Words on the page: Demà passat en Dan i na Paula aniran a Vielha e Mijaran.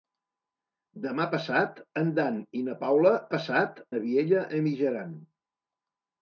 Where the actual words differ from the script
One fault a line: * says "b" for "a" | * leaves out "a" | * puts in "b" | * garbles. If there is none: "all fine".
* says "passat" for "aniran"